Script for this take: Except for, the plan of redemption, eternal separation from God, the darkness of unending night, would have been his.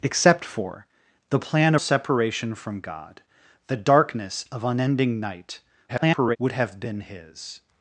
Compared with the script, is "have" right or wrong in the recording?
right